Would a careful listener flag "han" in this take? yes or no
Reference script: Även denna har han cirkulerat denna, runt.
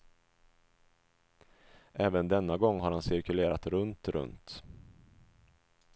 no